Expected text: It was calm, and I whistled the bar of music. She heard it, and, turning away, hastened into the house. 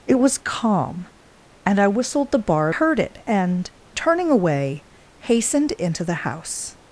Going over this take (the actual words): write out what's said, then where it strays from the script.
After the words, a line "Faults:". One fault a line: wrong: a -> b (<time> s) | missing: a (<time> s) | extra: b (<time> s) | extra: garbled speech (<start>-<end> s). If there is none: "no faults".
It was calm, and I whistled the bar heard it, and, turning away, hastened into the house.
Faults:
missing: of music She (2.7 s)